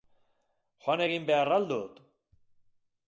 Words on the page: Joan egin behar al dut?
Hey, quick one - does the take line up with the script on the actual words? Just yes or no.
yes